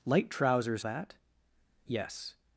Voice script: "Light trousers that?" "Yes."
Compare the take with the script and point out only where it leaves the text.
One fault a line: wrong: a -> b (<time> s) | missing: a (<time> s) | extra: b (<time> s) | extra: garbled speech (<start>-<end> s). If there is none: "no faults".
no faults